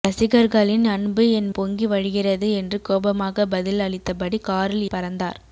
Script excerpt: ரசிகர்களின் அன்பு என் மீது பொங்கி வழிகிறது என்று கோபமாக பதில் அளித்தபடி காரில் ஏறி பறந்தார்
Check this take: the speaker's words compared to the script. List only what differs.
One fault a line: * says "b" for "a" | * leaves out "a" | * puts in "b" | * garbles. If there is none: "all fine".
* leaves out "மீது"
* leaves out "ஏறி"